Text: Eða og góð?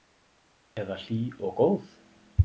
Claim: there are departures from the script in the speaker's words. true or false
true